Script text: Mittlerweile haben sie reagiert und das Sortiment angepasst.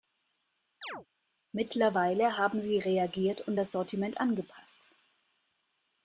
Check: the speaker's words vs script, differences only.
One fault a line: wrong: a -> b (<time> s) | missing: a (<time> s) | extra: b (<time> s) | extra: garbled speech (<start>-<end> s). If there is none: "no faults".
no faults